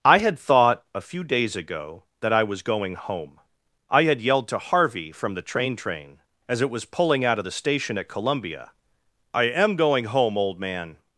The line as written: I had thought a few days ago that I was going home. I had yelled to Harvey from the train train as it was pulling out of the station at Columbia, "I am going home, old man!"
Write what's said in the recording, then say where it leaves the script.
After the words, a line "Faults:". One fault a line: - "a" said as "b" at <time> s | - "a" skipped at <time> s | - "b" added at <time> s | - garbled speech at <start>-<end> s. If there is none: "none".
I had thought a few days ago that I was going home. I had yelled to Harvey from the train train as it was pulling out of the station at Columbia, "I am going home, old man!"
Faults:
none